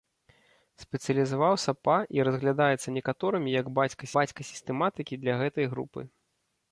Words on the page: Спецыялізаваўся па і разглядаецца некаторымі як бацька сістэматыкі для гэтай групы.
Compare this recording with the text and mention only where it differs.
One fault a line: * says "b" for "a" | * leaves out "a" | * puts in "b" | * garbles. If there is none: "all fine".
* puts in "бацька"